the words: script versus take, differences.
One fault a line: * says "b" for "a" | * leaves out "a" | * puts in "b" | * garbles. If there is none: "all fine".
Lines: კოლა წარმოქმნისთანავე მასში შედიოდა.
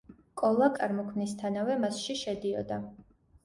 all fine